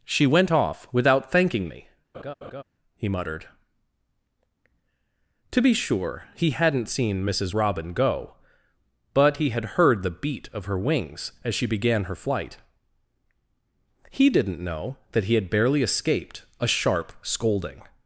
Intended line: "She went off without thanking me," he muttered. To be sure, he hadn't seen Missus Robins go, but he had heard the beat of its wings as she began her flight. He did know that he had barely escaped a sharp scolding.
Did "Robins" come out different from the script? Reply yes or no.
yes